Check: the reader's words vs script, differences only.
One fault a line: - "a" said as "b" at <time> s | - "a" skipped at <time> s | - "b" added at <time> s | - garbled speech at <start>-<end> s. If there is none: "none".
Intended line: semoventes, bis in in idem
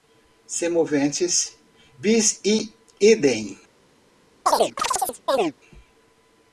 - "in" skipped at 2.7 s